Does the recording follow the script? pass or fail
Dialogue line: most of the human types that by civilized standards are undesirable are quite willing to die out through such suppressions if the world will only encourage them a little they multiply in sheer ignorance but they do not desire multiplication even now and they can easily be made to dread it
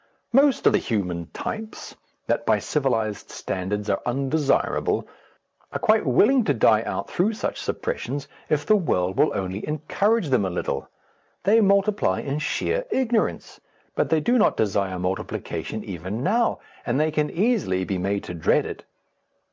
pass